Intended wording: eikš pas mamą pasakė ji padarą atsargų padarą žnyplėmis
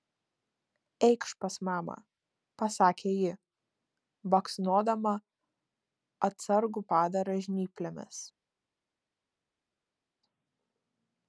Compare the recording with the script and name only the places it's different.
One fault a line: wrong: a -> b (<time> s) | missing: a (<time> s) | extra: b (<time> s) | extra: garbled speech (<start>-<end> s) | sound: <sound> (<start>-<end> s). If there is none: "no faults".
wrong: padarą -> baksnodama (4.3 s)